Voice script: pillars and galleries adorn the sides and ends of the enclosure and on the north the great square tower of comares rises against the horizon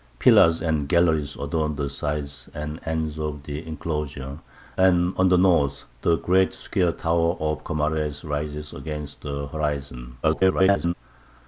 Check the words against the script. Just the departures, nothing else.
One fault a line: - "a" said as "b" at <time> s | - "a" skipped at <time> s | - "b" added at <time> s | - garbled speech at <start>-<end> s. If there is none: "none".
- garbled speech at 10.2-10.9 s